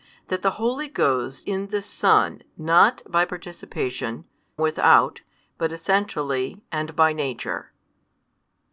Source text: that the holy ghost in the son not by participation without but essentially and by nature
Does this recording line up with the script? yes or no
yes